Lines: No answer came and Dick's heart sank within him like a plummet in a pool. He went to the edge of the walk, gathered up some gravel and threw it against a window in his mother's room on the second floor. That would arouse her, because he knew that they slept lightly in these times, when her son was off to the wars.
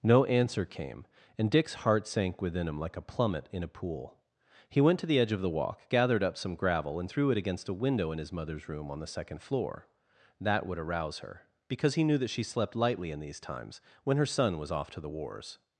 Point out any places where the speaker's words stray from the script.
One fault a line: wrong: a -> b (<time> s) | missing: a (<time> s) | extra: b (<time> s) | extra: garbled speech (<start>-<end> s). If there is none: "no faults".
wrong: they -> she (12.3 s)